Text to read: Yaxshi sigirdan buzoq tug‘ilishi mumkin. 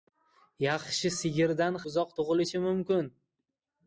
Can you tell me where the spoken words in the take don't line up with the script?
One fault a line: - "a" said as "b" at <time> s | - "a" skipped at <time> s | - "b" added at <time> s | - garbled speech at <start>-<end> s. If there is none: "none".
none